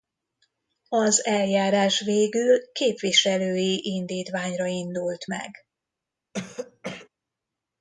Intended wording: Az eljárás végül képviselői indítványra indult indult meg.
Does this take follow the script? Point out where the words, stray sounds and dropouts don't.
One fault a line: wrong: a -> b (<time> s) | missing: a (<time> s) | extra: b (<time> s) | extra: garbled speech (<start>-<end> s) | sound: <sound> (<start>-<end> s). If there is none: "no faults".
missing: indult (5.3 s)
sound: throat clearing (6.3-7.1 s)